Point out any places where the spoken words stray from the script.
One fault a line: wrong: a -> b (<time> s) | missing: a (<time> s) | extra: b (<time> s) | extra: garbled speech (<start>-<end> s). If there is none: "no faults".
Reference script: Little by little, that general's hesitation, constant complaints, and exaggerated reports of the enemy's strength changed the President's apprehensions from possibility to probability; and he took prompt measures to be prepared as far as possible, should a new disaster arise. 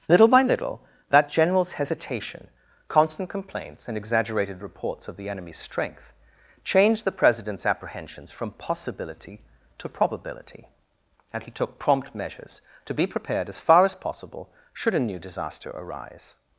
no faults